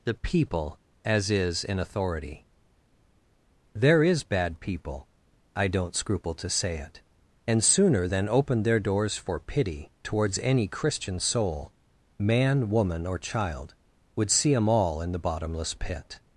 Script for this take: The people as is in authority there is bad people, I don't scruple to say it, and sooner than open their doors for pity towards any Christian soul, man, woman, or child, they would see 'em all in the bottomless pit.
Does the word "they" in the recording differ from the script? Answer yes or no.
yes